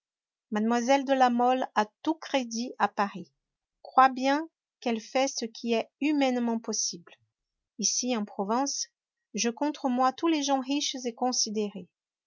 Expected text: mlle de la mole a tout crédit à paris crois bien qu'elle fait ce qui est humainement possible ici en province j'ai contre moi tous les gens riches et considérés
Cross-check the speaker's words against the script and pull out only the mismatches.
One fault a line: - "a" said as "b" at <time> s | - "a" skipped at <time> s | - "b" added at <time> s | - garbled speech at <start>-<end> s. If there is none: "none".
none